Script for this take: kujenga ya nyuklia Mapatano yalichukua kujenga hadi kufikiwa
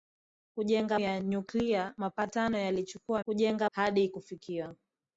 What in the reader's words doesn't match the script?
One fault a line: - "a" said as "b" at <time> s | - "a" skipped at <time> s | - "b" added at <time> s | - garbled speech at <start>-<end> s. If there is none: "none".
none